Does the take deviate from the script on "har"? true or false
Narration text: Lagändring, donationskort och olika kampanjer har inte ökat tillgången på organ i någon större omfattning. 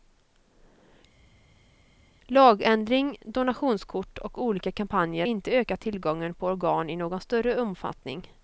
true